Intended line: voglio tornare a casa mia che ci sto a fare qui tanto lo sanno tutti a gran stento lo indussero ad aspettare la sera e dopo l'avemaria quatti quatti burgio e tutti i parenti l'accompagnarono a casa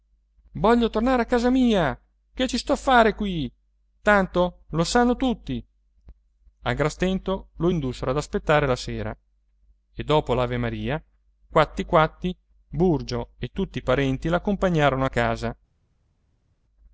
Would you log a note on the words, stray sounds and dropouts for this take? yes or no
no